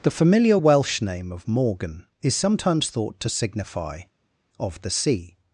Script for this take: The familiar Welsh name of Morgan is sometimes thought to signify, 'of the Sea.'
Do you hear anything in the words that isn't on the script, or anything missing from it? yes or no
no